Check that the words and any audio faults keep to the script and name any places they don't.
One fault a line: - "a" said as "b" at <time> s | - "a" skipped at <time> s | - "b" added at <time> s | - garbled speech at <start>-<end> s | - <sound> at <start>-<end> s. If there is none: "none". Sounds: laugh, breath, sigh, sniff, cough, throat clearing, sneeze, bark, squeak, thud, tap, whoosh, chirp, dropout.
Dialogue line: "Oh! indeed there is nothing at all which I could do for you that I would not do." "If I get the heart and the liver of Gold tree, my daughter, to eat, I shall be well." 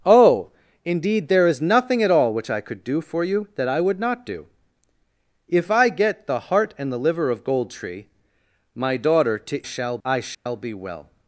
- "eat" said as "shall" at 9.6 s
- dropout at 10.3-10.5 s